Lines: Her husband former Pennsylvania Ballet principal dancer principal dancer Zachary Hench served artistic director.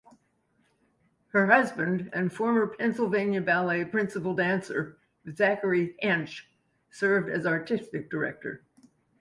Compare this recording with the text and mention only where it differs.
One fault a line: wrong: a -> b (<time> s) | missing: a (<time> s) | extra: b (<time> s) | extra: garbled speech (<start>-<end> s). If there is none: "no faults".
extra: and (2.1 s)
missing: principal dancer (5.0 s)
extra: as (7.3 s)